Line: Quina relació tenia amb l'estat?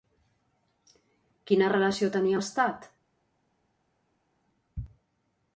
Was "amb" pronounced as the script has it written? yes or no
no